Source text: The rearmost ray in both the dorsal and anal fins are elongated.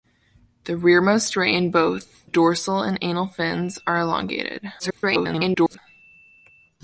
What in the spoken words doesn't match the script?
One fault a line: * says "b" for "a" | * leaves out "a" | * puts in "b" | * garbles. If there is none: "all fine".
* leaves out "the"
* garbles